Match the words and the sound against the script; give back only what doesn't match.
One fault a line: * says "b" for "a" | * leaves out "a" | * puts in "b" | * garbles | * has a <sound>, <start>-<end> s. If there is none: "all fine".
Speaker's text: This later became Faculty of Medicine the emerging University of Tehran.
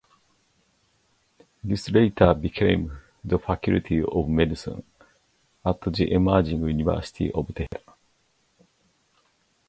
* puts in "the"
* puts in "at"
* has a dropout, 7.7-7.7 s